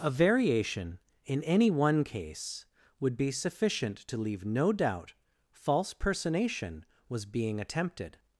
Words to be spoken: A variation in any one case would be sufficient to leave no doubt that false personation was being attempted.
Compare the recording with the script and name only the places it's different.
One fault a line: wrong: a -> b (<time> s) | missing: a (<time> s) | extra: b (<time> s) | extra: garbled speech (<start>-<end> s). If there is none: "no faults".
missing: that (5.1 s)